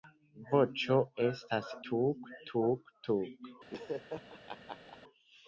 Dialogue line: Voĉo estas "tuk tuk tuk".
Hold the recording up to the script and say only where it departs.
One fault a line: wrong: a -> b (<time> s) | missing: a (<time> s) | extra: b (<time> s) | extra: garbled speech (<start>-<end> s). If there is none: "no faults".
no faults